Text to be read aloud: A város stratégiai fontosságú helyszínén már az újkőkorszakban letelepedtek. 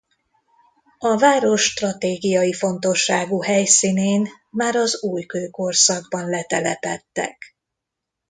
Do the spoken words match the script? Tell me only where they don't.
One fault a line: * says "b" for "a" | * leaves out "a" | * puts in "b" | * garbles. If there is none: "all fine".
all fine